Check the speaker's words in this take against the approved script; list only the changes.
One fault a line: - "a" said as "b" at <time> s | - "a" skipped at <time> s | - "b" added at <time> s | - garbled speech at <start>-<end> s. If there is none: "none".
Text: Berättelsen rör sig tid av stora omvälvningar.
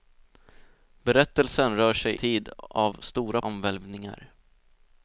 none